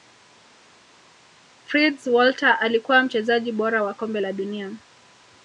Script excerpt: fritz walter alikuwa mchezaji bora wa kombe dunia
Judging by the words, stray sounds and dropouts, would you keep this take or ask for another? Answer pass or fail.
fail